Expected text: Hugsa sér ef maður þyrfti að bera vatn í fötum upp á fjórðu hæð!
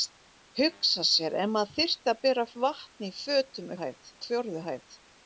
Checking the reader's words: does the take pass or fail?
fail